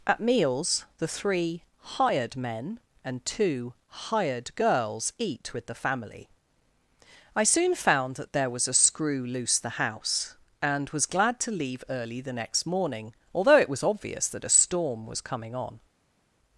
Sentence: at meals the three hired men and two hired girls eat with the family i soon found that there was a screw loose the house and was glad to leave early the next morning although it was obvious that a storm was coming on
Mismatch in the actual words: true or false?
false